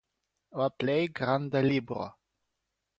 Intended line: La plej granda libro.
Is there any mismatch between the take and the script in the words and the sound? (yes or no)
no